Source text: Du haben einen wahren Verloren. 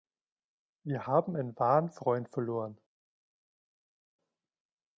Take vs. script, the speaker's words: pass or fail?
fail